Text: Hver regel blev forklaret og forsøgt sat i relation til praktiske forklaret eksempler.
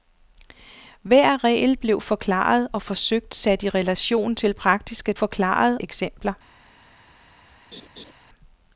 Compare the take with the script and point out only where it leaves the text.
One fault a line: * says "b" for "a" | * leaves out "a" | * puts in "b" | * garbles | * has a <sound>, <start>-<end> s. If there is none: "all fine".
* has a laugh, 7.7-8.1 s